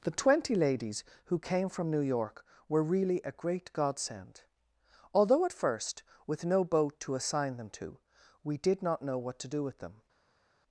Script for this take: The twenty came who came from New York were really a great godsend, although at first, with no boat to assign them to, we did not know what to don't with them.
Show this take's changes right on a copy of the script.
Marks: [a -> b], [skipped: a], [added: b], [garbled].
The twenty [came -> ladies] who came from New York were really a great godsend, although at first, with no boat to assign them to, we did not know what to [don't -> do] with them.